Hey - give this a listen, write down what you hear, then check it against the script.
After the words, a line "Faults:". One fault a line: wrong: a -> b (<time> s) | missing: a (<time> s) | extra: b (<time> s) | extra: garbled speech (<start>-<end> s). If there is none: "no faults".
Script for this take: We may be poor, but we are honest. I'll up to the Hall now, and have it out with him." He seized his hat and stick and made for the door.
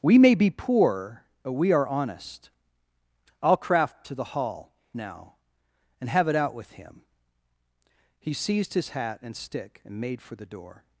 We may be poor, but we are honest. I'll craft to the Hall now, and have it out with him." He seized his hat and stick and made for the door.
Faults:
wrong: up -> craft (3.6 s)